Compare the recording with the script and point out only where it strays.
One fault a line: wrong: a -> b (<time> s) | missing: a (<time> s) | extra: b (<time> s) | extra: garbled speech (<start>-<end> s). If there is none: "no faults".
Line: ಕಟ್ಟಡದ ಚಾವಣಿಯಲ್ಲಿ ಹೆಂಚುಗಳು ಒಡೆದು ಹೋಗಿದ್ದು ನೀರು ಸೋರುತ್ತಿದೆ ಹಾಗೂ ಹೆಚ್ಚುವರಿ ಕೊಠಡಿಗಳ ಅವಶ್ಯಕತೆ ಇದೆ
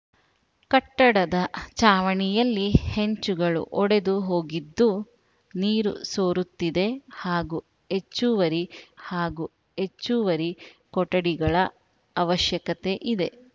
extra: ಹಾಗೂ ಹೆಚ್ಚುವರಿ (9.1 s)